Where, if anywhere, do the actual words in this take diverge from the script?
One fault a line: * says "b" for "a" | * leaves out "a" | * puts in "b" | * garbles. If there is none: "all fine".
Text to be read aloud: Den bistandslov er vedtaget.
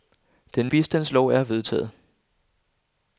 all fine